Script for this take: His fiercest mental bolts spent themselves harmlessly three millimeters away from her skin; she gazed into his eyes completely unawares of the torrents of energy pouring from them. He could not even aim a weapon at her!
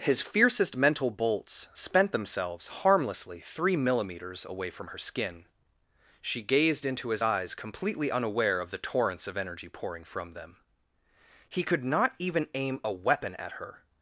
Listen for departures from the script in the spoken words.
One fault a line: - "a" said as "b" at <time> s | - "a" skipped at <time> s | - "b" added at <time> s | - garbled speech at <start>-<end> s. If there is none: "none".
- "unawares" said as "unaware" at 8.1 s